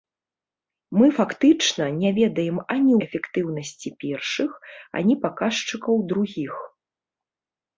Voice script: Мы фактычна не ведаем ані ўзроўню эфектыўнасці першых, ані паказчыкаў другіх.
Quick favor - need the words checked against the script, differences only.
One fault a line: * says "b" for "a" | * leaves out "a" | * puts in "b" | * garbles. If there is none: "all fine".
* leaves out "ўзроўню"